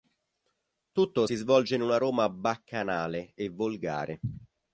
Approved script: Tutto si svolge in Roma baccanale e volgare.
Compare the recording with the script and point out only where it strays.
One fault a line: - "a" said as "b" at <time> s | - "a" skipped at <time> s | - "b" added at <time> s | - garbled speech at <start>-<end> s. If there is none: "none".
- "una" added at 1.8 s